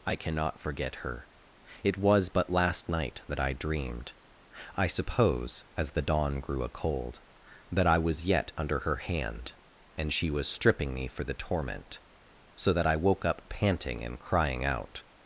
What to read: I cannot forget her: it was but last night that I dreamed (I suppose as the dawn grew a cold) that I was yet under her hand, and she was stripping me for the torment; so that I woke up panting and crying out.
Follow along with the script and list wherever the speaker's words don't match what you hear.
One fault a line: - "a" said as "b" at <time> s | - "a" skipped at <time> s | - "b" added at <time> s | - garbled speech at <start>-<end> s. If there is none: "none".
none